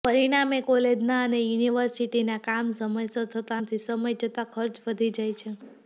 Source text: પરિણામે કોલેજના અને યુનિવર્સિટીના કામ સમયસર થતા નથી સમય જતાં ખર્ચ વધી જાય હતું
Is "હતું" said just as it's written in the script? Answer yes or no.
no